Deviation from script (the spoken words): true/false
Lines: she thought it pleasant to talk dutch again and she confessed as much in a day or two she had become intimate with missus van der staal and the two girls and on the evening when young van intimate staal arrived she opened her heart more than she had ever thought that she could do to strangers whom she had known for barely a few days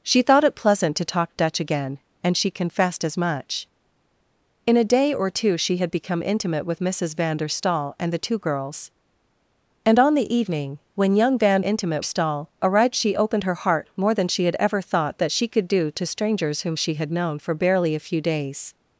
false